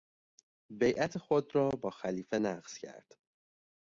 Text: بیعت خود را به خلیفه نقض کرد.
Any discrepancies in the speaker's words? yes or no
yes